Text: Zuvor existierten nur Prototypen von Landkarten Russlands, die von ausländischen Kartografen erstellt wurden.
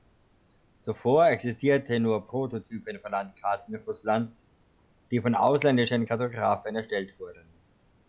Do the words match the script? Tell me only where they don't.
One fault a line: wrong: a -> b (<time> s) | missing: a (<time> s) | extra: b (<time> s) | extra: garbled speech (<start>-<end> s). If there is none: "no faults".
no faults